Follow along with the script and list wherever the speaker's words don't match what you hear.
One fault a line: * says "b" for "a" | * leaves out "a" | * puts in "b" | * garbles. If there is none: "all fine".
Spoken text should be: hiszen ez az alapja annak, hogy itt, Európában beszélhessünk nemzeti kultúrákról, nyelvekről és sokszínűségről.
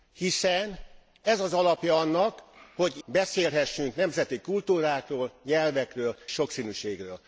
* leaves out "itt Európában"
* leaves out "és"